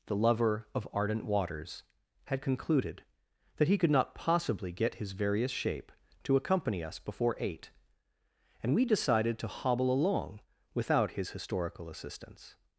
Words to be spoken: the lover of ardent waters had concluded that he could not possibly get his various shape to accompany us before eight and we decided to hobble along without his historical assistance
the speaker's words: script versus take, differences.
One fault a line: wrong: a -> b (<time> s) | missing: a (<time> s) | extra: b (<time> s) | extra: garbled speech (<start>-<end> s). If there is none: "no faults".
no faults